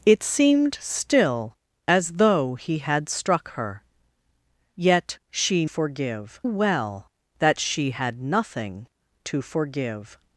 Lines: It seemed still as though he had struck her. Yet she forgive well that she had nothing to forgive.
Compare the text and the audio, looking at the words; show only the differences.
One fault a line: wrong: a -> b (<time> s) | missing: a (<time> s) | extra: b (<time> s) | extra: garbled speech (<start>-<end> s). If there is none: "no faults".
no faults